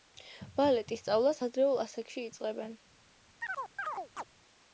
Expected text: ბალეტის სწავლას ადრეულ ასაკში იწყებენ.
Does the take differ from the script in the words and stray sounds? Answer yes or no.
yes